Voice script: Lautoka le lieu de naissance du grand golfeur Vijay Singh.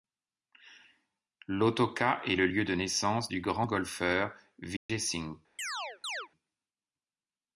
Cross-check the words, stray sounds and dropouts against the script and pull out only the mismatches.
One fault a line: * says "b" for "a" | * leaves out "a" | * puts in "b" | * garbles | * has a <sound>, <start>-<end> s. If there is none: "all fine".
* puts in "est"
* has a dropout, 4.8-4.9 s
* has a chirp, 5.6-6.3 s